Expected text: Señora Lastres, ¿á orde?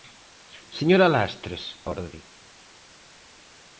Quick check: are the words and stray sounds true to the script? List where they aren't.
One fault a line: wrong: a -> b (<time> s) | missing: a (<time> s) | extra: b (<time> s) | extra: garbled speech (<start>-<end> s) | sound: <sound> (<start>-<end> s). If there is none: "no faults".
no faults